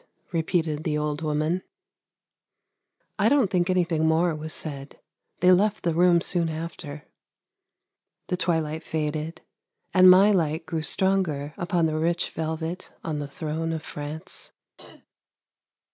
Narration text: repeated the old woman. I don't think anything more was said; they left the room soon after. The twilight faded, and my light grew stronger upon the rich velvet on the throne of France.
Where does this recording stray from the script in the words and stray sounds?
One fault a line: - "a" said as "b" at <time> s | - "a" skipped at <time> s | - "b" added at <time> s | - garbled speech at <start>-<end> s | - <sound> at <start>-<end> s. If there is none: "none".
- throat clearing at 14.8-15.1 s